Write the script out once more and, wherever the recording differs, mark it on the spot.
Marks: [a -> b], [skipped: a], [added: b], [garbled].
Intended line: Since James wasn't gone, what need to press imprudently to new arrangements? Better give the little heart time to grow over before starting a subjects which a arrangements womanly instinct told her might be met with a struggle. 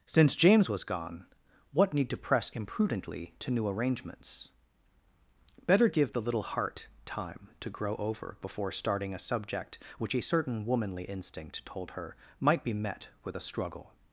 Since James [wasn't -> was] gone, what need to press imprudently to new arrangements? Better give the little heart time to grow over before starting a [subjects -> subject] which a [arrangements -> certain] womanly instinct told her might be met with a struggle.